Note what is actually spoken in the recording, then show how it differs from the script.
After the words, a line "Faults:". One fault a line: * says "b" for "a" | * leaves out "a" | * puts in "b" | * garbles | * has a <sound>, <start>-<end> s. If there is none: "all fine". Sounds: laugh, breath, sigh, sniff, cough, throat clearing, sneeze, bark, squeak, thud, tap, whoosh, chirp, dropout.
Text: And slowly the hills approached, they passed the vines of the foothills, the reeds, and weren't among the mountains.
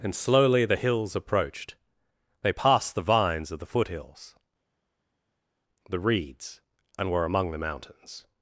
And slowly the hills approached, they passed the vines of the foothills, the reeds, and were among the mountains.
Faults:
* says "were" for "weren't"